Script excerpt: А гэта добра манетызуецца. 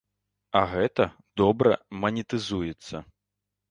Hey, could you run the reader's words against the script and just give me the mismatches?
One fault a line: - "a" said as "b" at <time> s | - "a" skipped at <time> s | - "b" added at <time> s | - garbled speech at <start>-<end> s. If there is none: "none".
none